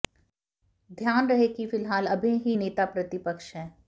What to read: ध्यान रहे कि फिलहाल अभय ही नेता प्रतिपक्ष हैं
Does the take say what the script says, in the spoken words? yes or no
yes